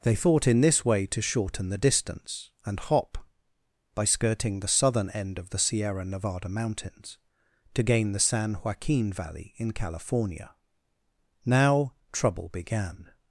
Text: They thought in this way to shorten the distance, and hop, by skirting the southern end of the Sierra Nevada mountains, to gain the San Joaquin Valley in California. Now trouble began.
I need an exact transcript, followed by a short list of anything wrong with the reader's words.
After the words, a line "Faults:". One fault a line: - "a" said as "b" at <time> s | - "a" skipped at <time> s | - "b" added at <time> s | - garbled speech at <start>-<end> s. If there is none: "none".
They thought in this way to shorten the distance, and hop, by skirting the southern end of the Sierra Nevada mountains, to gain the San Joaquin Valley in California. Now trouble began.
Faults:
none